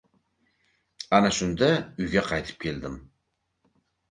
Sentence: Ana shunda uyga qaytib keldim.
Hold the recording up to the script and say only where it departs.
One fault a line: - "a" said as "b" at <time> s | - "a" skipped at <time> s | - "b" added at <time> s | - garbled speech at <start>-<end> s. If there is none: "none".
none